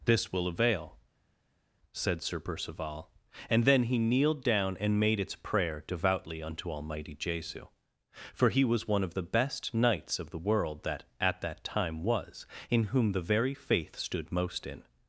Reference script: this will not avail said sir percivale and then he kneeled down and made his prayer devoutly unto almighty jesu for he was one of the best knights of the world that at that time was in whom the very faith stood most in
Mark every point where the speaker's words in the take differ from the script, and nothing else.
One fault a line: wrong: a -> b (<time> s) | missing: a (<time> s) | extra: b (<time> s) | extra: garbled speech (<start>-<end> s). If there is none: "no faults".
missing: not (0.5 s)
wrong: his -> its (5.2 s)